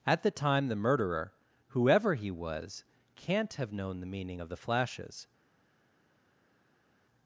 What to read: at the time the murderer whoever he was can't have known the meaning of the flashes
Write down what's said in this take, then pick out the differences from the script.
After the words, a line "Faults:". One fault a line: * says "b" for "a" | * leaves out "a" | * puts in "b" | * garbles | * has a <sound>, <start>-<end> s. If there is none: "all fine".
at the time the murderer whoever he was can't have known the meaning of the flashes
Faults:
all fine